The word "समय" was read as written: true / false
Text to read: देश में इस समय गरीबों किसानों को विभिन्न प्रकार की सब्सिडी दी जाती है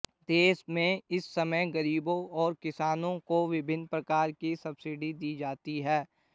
true